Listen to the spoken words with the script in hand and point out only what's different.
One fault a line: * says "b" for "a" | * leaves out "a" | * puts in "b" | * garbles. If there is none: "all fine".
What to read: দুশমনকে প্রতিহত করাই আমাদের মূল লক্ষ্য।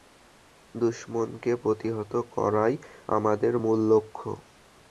all fine